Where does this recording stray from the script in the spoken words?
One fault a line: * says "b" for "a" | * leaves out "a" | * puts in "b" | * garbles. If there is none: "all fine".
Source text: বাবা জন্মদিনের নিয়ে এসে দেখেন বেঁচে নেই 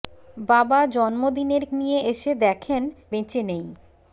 all fine